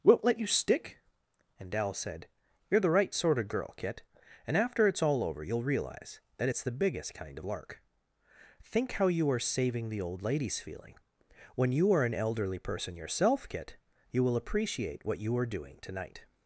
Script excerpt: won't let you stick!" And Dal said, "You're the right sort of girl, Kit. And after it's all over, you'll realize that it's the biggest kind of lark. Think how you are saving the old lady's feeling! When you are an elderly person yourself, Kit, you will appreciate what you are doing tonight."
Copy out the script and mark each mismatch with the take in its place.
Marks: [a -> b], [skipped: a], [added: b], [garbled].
won't let you stick!" And Dal said, "You're the right sort of girl, Kit. And after it's all over, you'll realize that it's the biggest kind of lark. Think how you are saving the old lady's feeling! When you are an elderly person yourself, Kit, you will appreciate what you are doing tonight."